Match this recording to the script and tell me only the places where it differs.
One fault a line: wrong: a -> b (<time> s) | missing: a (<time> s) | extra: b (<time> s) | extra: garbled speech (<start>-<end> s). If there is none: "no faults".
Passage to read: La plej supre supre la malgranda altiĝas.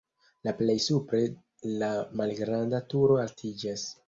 missing: supre (1.2 s)
extra: turo (2.9 s)